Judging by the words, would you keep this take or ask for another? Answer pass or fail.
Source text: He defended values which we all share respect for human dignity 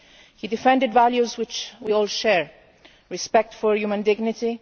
pass